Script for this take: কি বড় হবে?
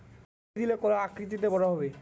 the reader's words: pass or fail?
fail